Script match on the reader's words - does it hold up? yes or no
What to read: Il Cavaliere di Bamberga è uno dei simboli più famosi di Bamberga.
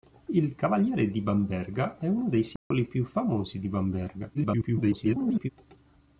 no